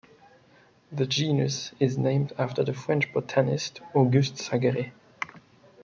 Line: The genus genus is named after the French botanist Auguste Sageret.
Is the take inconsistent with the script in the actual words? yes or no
yes